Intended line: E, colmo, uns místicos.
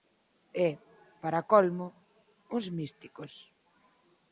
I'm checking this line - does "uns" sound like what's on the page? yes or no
yes